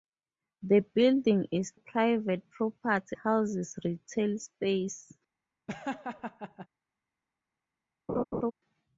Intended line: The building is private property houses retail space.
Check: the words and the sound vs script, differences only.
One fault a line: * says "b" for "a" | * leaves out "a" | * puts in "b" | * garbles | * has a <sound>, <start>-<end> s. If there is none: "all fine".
* has a laugh, 5.7-6.7 s
* has a laugh, 8.1-8.5 s